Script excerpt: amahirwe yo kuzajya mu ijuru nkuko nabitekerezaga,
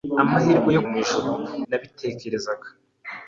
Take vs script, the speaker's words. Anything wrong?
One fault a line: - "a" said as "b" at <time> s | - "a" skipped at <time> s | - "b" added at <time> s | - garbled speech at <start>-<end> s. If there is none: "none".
- "kuzajya" skipped at 0.8 s
- "nkuko" skipped at 1.3 s